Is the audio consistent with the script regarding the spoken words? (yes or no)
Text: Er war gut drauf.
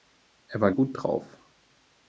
yes